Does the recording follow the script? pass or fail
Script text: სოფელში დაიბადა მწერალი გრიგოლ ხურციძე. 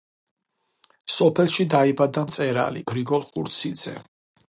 pass